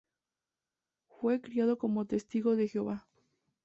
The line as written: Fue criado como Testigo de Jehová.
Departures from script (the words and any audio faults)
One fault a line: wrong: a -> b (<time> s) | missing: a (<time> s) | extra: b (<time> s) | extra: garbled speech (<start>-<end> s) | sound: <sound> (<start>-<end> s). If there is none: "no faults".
no faults